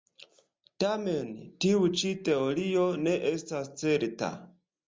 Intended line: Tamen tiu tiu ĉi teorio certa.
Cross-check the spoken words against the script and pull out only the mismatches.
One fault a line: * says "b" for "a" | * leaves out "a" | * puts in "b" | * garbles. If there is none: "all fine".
* leaves out "tiu"
* puts in "ne estas"